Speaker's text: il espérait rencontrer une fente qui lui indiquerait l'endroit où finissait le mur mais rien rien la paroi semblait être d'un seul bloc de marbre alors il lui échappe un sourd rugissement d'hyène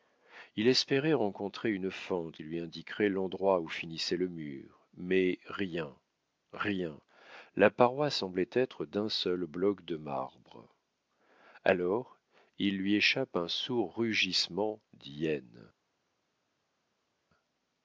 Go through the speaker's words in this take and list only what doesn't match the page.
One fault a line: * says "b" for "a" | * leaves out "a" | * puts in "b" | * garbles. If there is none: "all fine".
* leaves out "qui"